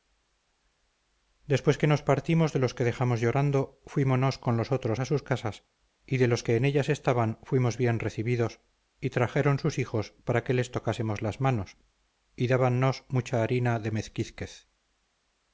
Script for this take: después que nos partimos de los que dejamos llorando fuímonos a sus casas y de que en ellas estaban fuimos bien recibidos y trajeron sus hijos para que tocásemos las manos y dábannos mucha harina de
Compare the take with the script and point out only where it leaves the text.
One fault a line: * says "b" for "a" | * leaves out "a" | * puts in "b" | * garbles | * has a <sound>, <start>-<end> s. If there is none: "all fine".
* puts in "con los otros"
* puts in "los"
* puts in "les"